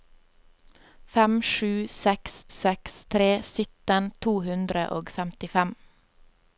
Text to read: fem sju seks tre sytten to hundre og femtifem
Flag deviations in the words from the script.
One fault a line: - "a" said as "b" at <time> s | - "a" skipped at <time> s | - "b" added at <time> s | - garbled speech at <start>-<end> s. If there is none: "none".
- "seks" added at 2.6 s